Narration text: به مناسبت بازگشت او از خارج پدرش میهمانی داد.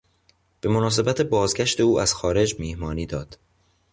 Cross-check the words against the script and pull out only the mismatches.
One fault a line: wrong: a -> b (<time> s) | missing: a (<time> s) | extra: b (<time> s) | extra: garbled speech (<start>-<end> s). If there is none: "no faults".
missing: پدرش (2.5 s)